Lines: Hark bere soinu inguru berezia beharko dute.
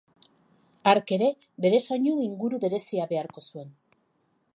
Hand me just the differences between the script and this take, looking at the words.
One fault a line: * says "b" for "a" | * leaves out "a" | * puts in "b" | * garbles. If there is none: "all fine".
* puts in "ere"
* says "zuen" for "dute"